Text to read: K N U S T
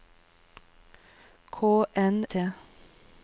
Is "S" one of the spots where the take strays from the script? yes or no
yes